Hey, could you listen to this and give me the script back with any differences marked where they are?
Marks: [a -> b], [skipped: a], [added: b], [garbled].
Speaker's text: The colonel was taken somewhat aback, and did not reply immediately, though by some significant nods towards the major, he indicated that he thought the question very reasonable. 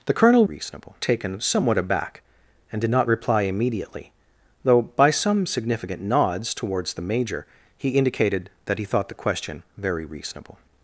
The colonel [was -> reasonable] taken somewhat aback, and did not reply immediately, though by some significant nods towards the major, he indicated that he thought the question very reasonable.